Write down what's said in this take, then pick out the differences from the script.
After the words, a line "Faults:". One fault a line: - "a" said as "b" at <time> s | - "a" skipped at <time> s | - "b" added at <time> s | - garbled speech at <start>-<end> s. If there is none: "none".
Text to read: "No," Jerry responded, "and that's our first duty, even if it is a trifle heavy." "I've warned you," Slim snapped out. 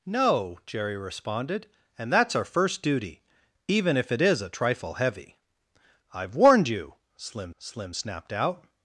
"No," Jerry responded, "and that's our first duty, even if it is a trifle heavy." "I've warned you," Slim Slim snapped out.
Faults:
- "Slim" added at 7.6 s